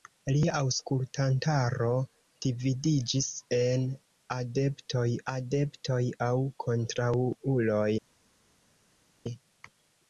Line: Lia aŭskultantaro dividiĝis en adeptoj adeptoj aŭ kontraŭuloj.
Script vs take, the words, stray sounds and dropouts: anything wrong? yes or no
no